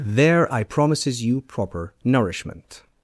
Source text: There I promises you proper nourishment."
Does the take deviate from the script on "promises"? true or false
false